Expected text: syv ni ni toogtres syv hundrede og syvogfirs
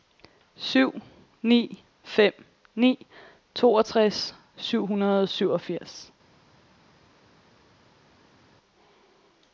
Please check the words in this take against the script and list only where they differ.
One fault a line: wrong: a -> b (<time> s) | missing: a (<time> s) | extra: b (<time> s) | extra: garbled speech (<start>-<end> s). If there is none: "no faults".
extra: fem (2.0 s)